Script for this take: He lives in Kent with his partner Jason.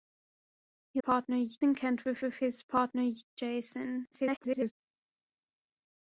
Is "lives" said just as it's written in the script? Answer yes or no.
no